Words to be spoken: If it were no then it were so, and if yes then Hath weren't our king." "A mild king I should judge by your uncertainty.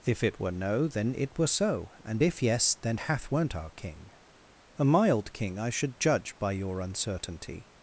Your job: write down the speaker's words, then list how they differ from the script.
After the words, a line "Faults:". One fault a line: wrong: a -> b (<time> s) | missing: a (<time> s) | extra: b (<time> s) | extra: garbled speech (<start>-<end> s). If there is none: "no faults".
If it were no then it were so, and if yes then Hath weren't our king." "A mild king I should judge by your uncertainty.
Faults:
no faults